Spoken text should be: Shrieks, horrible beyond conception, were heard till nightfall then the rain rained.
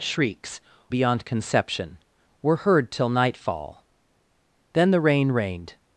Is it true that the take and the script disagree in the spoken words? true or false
true